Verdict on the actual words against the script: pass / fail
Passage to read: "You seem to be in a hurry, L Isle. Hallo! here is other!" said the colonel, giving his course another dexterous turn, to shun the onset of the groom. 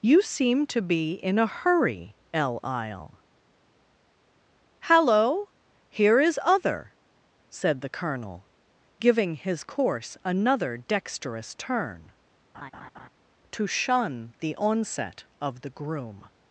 pass